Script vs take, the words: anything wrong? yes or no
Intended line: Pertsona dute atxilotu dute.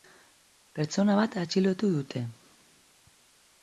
yes